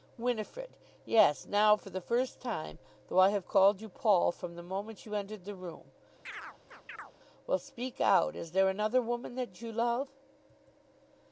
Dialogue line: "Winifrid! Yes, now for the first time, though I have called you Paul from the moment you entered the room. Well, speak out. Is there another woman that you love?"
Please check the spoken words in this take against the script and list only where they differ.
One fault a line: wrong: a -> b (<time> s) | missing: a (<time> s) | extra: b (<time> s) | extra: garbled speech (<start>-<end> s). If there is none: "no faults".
no faults